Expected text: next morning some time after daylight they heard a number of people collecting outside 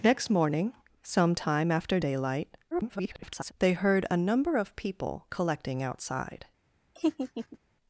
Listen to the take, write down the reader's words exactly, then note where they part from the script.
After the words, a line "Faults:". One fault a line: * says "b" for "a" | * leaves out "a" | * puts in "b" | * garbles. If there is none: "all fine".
next morning some time after daylight [garbled] they heard a number of people collecting outside
Faults:
* garbles